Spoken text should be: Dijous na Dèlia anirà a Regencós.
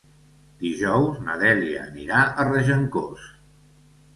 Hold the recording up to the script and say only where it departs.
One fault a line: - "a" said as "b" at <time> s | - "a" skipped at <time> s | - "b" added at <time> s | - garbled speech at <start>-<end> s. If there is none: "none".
none